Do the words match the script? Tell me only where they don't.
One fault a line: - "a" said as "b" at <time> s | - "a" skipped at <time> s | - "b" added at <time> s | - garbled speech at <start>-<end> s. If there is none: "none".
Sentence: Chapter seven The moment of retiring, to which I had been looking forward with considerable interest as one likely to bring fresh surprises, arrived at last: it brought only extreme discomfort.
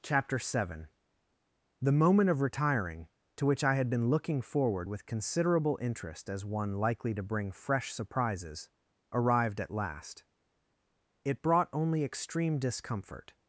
none